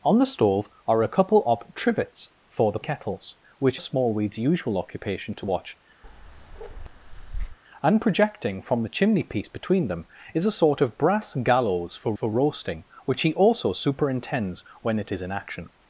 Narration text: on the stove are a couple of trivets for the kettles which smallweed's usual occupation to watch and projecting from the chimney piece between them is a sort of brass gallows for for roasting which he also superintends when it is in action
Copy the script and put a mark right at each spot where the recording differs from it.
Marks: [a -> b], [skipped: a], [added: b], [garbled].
on the stove are a couple of trivets for the kettles which smallweed's usual occupation to watch and projecting from the chimney piece between them is a sort of brass gallows for for roasting which he also superintends when it is in action